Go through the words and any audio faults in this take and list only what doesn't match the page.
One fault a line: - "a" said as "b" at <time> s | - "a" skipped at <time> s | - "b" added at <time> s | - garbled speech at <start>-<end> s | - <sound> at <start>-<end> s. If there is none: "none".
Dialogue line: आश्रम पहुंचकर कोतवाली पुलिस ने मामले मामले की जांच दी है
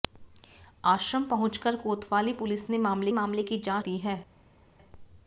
none